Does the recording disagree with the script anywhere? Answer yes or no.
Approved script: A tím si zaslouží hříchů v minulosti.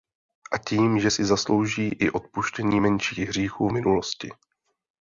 yes